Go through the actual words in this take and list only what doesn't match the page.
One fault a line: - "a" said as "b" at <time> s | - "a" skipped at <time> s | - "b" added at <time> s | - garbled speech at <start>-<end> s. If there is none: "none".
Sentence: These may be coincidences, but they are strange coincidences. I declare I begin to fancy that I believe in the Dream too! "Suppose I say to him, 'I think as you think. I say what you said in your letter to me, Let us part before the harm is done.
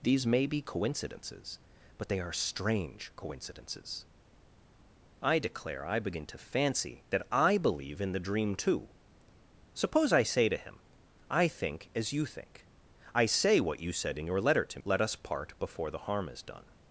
- "me" skipped at 14.8 s